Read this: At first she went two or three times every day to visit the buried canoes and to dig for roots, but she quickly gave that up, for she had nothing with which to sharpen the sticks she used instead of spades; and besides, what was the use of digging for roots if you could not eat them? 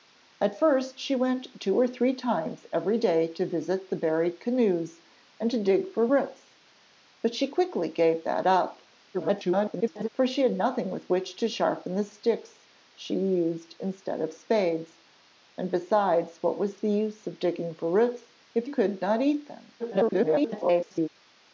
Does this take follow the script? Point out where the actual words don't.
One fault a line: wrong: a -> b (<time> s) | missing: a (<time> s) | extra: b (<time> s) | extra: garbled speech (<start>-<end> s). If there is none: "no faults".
extra: garbled speech (9.1-10.1 s)
missing: you (18.7 s)
extra: garbled speech (19.8-21.1 s)